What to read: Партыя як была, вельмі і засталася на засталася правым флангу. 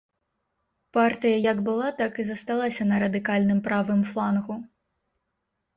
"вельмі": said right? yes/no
no